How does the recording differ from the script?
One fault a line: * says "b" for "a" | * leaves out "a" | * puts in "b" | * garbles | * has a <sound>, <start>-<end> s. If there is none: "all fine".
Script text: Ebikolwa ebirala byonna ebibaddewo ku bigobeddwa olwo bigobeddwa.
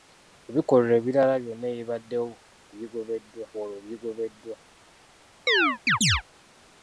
* has a chirp, 5.5-6.2 s